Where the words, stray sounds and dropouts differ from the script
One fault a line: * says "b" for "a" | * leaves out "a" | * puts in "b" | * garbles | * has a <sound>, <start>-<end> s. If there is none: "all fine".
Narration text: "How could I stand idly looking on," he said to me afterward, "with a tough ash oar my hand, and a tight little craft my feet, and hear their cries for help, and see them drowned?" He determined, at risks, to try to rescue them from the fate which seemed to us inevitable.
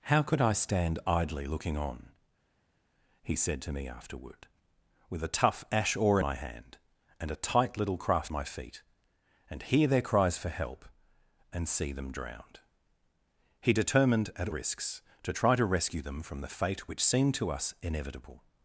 all fine